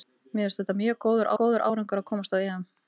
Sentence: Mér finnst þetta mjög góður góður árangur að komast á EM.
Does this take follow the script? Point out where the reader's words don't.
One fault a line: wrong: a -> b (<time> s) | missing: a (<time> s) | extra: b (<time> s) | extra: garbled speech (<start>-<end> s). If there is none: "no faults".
no faults